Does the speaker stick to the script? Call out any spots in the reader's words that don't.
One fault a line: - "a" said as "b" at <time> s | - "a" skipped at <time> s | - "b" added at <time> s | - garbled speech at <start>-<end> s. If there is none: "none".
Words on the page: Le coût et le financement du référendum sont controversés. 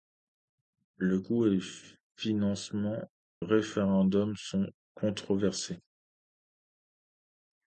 - "du" skipped at 3.0 s